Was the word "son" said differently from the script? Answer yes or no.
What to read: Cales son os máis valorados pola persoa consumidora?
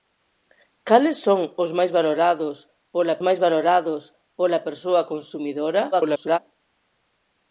no